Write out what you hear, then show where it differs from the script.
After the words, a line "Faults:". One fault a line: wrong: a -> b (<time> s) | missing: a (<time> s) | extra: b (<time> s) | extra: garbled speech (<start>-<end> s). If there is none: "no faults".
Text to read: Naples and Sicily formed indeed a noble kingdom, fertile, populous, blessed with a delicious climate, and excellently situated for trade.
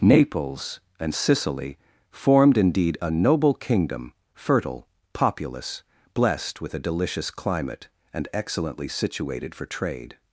Naples and Sicily formed indeed a noble kingdom, fertile, populous, blessed with a delicious climate, and excellently situated for trade.
Faults:
no faults